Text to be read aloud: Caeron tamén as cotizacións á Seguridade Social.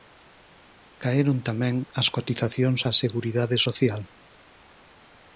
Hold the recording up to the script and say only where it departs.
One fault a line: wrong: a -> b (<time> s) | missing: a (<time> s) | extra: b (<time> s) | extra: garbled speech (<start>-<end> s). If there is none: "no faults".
no faults